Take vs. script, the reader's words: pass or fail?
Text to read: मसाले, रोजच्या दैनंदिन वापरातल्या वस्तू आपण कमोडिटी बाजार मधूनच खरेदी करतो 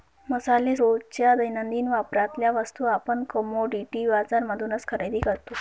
pass